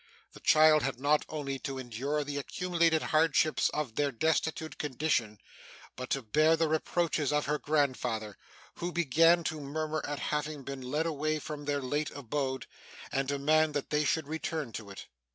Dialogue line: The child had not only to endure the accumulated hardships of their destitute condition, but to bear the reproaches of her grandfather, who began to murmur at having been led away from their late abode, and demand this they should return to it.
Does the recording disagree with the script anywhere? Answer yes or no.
yes